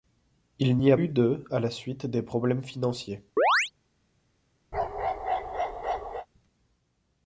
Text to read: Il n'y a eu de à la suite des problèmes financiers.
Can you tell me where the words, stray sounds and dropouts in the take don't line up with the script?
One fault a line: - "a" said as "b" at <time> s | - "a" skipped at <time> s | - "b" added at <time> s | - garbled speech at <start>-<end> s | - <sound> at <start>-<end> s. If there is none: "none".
- chirp at 3.4-3.7 s
- bark at 4.7-6.3 s